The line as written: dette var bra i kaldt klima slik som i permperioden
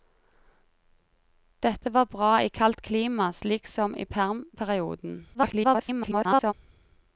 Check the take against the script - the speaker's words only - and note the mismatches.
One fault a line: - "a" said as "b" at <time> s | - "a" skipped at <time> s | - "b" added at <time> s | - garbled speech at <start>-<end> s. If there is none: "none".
- garbled speech at 5.3-6.5 s